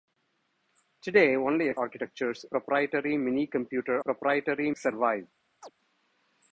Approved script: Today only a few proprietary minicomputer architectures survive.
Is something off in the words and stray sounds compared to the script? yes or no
yes